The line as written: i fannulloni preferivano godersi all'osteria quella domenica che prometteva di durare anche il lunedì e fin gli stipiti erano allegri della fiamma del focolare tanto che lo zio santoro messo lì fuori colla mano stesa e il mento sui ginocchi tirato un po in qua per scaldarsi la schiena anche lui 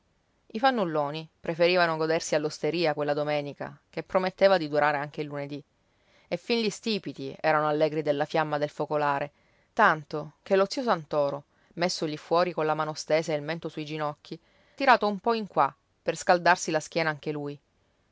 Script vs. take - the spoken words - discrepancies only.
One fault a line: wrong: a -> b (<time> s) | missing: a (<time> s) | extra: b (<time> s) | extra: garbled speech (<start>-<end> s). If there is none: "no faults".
no faults